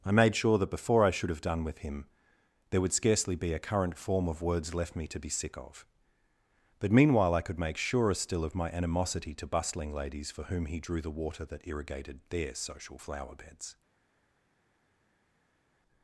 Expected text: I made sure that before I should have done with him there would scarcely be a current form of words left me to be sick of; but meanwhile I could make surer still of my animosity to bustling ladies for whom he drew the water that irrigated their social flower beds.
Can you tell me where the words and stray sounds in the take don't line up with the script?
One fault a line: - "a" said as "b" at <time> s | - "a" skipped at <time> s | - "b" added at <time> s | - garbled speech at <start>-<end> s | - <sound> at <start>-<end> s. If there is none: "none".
none